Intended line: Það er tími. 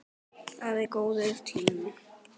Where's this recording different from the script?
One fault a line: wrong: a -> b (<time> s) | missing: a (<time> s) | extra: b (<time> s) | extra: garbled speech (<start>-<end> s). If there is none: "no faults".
extra: góður (1.0 s)